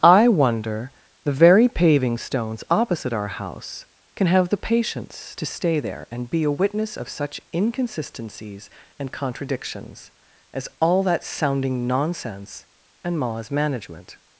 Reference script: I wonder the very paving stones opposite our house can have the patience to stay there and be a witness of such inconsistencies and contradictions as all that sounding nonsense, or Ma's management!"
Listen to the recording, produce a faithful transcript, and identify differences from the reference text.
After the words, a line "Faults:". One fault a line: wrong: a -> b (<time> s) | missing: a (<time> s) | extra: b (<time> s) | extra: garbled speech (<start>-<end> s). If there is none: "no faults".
I wonder the very paving stones opposite our house can have the patience to stay there and be a witness of such inconsistencies and contradictions as all that sounding nonsense, and Ma's management!"
Faults:
wrong: or -> and (13.1 s)